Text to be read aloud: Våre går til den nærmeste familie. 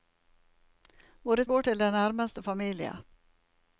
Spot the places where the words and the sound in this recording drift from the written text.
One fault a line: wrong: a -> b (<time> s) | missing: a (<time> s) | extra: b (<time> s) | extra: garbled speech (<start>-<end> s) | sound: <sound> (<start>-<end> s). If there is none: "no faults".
no faults